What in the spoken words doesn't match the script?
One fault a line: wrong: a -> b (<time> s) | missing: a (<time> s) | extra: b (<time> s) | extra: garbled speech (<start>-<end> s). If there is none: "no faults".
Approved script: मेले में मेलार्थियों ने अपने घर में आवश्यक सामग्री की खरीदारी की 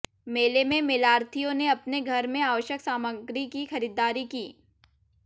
no faults